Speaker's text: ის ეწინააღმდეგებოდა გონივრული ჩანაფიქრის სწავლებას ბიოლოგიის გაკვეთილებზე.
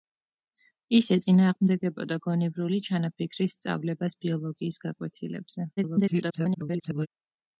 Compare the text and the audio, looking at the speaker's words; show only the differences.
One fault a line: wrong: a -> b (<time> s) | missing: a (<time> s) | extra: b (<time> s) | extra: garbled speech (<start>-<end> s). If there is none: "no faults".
extra: garbled speech (5.8-7.1 s)